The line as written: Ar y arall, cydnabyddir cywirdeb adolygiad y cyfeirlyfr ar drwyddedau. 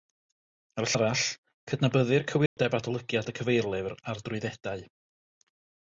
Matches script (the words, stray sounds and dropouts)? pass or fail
fail